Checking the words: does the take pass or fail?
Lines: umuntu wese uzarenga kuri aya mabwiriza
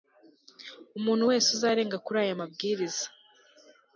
pass